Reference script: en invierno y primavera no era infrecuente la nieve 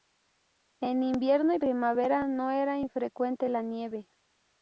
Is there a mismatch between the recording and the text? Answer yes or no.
no